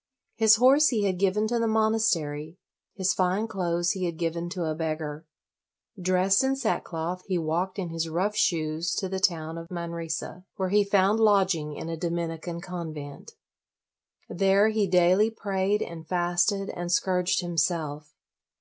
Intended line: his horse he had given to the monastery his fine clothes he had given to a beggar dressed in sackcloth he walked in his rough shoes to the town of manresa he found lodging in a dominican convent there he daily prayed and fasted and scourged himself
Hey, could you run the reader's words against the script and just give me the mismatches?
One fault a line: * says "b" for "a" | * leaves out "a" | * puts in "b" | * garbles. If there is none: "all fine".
* puts in "where"